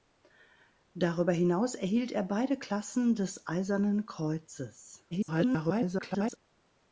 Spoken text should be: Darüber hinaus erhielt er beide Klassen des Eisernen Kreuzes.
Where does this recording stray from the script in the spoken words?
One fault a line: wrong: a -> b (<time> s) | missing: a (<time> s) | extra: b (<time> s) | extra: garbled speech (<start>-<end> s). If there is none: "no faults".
extra: garbled speech (5.1-6.4 s)